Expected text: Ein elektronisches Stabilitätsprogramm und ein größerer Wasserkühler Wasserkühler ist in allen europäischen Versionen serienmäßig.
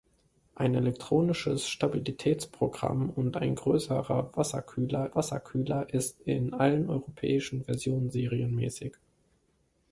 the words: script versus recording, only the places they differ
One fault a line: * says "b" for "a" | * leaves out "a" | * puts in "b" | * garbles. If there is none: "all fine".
all fine